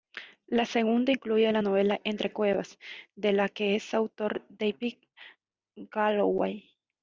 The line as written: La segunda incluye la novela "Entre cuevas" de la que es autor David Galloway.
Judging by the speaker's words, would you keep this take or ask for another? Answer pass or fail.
pass